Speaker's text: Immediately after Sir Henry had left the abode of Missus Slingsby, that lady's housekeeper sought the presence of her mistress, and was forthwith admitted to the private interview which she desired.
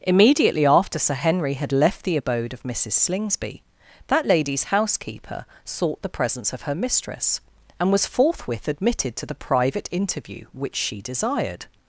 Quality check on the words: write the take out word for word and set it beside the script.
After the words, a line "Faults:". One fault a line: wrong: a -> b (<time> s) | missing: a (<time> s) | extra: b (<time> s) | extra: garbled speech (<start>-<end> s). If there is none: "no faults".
Immediately after Sir Henry had left the abode of Missus Slingsby, that lady's housekeeper sought the presence of her mistress, and was forthwith admitted to the private interview which she desired.
Faults:
no faults